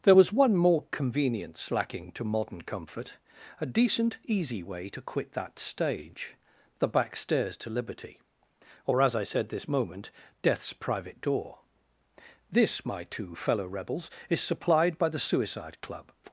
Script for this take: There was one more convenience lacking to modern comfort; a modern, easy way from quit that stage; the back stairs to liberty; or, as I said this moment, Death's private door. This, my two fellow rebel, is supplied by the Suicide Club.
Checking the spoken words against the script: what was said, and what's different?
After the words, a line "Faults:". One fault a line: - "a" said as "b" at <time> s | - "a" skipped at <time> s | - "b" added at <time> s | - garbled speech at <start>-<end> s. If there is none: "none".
There was one more convenience lacking to modern comfort; a decent, easy way to quit that stage; the back stairs to liberty; or, as I said this moment, Death's private door. This, my two fellow rebels, is supplied by the Suicide Club.
Faults:
- "modern" said as "decent" at 3.7 s
- "from" said as "to" at 4.9 s
- "rebel" said as "rebels" at 13.7 s